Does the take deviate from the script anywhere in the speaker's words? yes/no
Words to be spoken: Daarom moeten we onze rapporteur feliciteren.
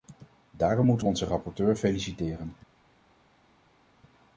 no